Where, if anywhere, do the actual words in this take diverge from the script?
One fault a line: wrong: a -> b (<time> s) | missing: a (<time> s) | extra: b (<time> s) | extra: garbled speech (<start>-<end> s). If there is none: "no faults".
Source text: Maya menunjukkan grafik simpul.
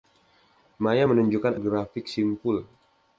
no faults